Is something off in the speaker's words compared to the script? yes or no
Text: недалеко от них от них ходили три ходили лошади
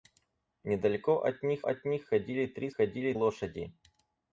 no